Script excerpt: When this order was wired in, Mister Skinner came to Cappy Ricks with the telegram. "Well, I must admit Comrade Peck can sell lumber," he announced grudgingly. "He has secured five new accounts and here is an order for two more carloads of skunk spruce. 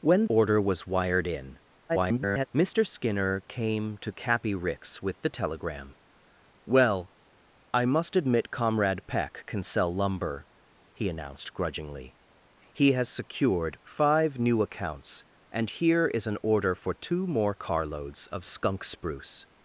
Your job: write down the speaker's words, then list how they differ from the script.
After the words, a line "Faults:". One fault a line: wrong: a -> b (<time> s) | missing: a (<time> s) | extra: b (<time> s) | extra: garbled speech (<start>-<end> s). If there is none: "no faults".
When order was wired in, [garbled] Mister Skinner came to Cappy Ricks with the telegram. "Well, I must admit Comrade Peck can sell lumber," he announced grudgingly. "He has secured five new accounts and here is an order for two more carloads of skunk spruce.
Faults:
missing: this (0.2 s)
extra: garbled speech (1.9-2.5 s)